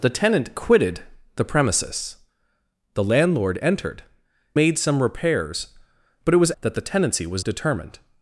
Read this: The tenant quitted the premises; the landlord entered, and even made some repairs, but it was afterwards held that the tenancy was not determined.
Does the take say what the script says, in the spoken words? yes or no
no